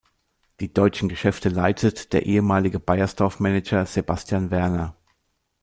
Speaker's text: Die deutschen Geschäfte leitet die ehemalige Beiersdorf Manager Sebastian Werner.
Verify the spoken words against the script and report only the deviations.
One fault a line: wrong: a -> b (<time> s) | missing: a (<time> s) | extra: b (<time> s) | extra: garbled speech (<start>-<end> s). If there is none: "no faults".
wrong: die -> der (2.1 s)